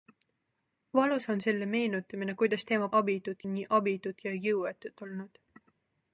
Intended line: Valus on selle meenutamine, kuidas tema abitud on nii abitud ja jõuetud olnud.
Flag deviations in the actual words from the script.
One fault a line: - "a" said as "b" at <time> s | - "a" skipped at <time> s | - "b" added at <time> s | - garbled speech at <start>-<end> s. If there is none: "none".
none